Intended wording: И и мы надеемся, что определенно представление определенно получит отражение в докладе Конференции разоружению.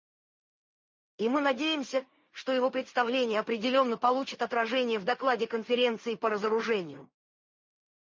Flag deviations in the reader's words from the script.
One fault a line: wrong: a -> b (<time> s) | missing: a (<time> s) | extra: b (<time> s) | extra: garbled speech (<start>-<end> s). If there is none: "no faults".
missing: и (1.3 s)
wrong: определенно -> его (2.5 s)
extra: по (6.2 s)